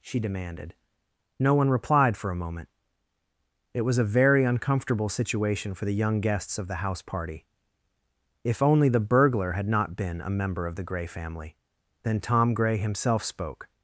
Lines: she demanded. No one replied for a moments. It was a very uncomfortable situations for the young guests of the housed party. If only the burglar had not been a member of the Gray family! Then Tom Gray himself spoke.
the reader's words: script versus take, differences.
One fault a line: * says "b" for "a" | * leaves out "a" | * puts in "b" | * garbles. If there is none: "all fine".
* says "moment" for "moments"
* says "situation" for "situations"
* says "house" for "housed"